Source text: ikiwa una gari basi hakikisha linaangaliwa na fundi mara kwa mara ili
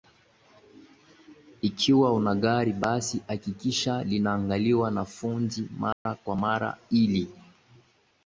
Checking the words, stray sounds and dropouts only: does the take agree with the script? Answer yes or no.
no